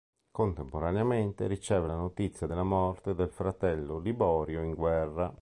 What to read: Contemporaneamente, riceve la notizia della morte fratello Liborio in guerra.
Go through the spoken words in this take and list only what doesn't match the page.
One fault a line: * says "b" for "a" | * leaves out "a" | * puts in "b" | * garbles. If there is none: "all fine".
* puts in "del"